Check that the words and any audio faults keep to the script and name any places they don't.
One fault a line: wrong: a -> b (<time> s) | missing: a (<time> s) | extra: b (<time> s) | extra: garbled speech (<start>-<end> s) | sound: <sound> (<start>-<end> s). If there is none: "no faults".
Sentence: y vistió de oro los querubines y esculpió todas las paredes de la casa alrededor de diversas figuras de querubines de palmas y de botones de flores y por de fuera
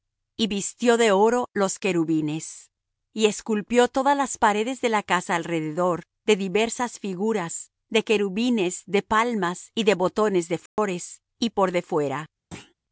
sound: dropout (10.7-10.8 s)
sound: thud (12.5-12.7 s)